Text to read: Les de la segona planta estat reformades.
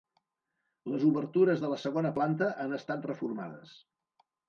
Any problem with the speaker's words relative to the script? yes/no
yes